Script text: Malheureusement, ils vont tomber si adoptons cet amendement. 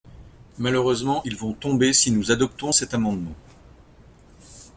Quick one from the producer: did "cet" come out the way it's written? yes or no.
yes